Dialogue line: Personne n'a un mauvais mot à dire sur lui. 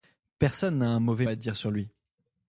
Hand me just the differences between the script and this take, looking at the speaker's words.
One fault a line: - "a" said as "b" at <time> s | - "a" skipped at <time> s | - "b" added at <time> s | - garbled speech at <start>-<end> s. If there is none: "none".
- "mot" skipped at 1.3 s